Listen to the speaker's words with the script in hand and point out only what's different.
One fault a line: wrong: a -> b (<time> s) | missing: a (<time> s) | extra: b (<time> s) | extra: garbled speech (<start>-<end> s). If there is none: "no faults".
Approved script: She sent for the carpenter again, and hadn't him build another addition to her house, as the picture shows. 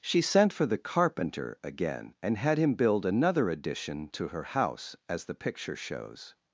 wrong: hadn't -> had (2.4 s)